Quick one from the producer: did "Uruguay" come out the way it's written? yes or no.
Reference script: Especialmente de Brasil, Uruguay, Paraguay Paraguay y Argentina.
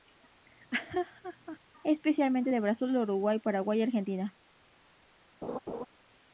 yes